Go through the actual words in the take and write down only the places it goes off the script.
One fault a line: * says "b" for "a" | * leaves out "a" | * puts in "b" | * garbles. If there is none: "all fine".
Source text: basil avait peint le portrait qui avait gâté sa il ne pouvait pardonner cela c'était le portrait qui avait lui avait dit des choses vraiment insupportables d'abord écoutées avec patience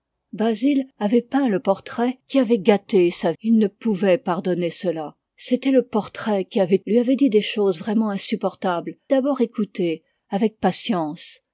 all fine